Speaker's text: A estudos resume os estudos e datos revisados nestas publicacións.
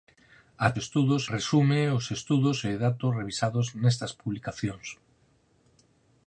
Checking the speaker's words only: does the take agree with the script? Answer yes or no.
yes